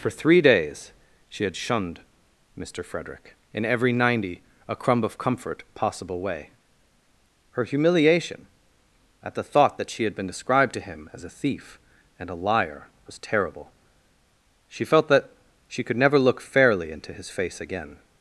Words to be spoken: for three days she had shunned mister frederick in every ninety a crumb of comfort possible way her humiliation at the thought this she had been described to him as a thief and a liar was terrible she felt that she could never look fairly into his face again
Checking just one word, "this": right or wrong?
wrong